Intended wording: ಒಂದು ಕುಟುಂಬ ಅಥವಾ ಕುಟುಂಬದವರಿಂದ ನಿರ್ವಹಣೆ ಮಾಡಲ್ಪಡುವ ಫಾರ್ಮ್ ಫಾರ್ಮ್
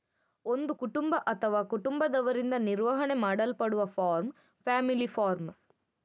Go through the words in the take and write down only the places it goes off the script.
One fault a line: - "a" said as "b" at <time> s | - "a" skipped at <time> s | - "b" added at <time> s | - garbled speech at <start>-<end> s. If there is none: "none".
- "ಫ್ಯಾಮಿಲಿ" added at 4.7 s